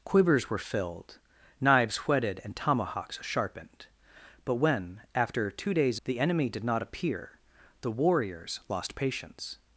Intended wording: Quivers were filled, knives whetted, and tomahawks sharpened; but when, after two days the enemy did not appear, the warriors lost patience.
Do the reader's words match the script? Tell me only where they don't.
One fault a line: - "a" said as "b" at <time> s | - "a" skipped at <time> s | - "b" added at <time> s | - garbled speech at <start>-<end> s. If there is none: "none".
none